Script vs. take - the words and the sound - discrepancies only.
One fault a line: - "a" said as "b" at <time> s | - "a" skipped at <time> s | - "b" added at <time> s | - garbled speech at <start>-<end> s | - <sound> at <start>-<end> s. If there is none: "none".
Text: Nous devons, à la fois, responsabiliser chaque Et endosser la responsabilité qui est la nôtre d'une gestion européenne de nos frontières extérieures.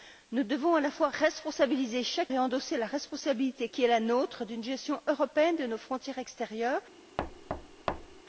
- thud at 7.2-8.2 s